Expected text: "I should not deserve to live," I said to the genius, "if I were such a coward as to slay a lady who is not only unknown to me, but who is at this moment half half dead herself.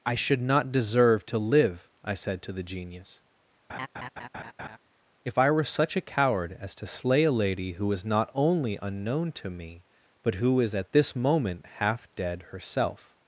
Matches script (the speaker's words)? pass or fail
fail